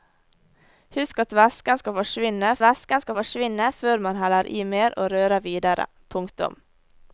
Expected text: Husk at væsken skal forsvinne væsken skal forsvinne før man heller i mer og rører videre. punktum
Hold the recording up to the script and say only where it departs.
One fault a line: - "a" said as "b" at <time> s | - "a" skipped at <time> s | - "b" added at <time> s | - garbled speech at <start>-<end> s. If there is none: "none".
none